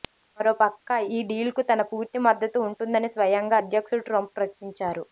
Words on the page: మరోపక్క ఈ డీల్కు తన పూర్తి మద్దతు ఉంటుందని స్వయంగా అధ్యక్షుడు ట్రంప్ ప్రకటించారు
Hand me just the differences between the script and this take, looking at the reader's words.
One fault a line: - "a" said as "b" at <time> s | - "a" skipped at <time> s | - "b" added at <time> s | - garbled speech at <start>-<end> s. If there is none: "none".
none